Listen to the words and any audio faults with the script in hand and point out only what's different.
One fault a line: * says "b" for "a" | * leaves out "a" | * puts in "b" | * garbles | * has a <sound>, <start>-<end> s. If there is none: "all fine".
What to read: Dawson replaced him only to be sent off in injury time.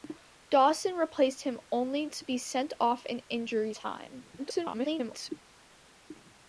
* garbles